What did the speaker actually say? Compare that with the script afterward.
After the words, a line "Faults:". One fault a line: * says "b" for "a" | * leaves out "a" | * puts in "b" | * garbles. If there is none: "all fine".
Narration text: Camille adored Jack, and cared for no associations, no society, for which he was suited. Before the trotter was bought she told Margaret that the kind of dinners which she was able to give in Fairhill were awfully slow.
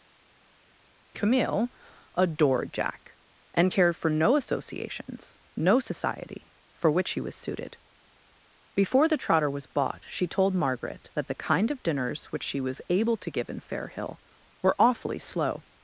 Camille adored Jack, and cared for no associations, no society, for which he was suited. Before the trotter was bought she told Margaret that the kind of dinners which she was able to give in Fairhill were awfully slow.
Faults:
all fine